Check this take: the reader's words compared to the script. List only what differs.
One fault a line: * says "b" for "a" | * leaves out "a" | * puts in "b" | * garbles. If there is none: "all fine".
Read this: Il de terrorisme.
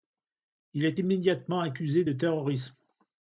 * puts in "est immédiatement accusé"